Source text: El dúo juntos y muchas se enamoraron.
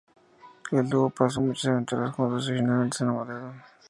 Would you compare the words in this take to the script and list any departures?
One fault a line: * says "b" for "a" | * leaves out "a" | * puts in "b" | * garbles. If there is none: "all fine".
* puts in "pasó muchas aventuras"
* says "finalmente" for "muchas"